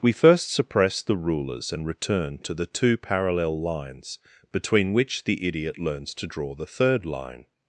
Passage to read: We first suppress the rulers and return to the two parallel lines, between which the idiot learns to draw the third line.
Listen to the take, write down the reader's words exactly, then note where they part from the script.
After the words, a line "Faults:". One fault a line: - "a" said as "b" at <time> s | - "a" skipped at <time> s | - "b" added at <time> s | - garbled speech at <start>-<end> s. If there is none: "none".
We first suppress the rulers and return to the two parallel lines, between which the idiot learns to draw the third line.
Faults:
none